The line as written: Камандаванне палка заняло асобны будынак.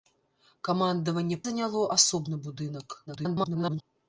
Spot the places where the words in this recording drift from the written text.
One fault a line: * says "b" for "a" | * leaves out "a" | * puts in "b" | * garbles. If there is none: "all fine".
* leaves out "палка"
* garbles